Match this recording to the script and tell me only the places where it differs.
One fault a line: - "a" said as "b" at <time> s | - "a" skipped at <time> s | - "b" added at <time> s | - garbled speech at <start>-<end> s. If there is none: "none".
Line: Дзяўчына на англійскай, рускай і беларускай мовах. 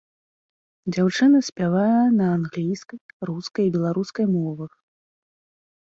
- "спявае" added at 1.5 s